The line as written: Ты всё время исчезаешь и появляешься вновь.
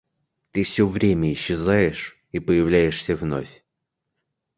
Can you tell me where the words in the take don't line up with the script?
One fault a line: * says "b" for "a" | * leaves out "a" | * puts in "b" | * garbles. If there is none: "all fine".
all fine